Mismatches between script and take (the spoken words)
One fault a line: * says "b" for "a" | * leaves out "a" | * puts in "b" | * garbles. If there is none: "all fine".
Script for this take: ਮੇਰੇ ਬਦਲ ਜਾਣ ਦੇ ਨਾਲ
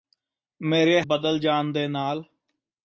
all fine